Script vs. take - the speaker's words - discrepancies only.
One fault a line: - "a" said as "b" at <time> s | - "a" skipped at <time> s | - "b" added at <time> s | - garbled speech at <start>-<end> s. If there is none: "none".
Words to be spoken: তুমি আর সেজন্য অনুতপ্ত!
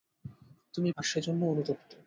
none